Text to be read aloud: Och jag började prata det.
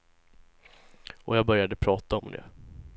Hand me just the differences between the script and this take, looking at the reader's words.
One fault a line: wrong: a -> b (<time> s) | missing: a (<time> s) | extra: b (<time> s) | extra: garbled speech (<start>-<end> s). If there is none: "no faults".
extra: om (2.2 s)